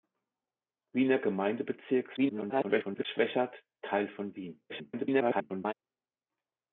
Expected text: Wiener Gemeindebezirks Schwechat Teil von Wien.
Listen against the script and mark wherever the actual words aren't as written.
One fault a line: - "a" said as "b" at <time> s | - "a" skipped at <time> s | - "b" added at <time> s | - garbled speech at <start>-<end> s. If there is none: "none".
- garbled speech at 2.2-3.1 s
- garbled speech at 4.7-5.7 s